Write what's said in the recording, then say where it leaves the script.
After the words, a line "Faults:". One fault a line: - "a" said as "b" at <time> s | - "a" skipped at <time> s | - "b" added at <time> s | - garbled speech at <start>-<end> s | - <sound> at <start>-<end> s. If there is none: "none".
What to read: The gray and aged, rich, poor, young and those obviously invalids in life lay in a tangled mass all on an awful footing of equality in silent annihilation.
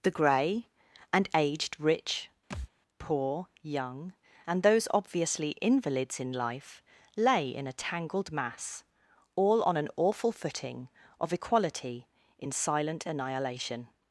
The gray and aged, rich, poor, young and those obviously invalids in life lay in a tangled mass all on an awful footing of equality in silent annihilation.
Faults:
- thud at 2.5-2.7 s